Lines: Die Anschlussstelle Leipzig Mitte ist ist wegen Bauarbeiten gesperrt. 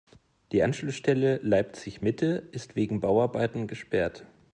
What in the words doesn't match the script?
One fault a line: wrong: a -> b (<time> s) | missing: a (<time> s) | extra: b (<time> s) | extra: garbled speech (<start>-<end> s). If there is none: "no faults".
missing: ist (2.8 s)